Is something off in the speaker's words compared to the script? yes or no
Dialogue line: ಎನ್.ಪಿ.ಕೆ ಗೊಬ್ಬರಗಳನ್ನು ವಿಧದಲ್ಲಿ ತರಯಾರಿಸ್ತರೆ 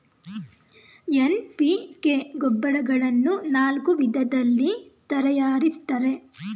yes